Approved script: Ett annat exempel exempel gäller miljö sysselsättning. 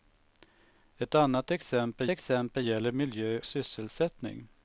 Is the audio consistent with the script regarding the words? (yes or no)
yes